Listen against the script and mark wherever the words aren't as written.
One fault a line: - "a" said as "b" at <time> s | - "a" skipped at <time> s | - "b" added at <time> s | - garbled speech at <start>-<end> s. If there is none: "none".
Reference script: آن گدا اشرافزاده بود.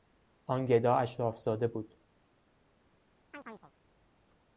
none